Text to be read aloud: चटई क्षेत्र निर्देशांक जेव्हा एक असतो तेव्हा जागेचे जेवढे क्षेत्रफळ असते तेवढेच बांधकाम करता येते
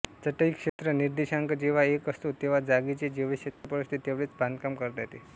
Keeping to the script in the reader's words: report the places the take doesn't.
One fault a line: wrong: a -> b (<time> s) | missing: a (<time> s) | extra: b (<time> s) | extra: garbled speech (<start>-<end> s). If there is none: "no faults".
no faults